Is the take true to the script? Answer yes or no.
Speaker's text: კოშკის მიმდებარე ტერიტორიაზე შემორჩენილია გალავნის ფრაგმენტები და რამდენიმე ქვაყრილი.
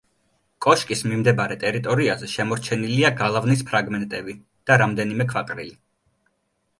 yes